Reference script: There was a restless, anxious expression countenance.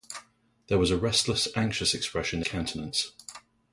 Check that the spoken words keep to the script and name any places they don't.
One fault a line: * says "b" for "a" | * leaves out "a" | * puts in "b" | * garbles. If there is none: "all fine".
all fine